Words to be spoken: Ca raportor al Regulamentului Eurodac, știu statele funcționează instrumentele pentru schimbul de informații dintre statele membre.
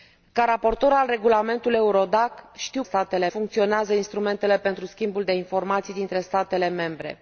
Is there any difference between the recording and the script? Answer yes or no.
no